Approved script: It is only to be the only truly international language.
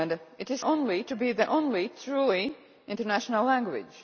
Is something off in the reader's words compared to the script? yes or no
no